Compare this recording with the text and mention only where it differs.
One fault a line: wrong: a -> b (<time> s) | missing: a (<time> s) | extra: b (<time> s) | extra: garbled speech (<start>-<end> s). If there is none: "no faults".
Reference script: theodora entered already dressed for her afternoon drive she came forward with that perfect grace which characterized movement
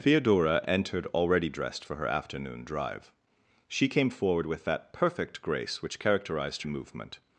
no faults